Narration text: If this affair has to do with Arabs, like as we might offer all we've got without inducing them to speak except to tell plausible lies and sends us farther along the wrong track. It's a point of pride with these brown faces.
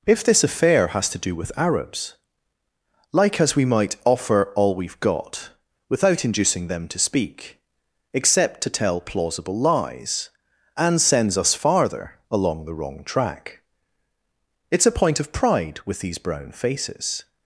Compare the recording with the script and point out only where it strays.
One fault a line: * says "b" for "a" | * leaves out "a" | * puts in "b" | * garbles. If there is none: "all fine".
all fine